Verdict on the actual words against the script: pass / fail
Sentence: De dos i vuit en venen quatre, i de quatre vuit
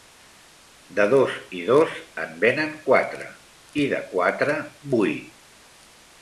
fail